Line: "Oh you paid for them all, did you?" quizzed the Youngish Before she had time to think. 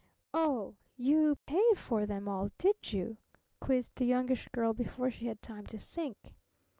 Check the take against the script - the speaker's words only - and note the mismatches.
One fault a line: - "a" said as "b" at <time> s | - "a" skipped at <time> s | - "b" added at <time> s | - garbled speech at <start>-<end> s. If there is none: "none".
- "Girl" added at 4.5 s